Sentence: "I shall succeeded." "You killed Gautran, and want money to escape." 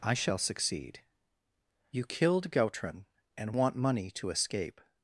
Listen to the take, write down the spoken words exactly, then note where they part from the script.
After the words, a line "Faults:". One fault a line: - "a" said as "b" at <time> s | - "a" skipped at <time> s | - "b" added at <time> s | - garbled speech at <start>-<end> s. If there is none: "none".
"I shall succeed." "You killed Gautran, and want money to escape."
Faults:
- "succeeded" said as "succeed" at 0.4 s